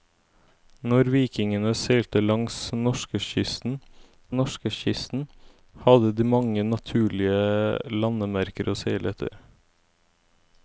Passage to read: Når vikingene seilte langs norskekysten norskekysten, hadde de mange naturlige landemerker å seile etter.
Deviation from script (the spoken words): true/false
false